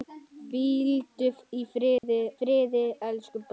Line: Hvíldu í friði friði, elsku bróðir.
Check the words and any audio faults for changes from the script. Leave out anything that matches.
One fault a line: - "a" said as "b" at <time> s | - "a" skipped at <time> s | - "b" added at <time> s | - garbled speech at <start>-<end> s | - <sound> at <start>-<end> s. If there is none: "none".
- dropout at 2.0-2.0 s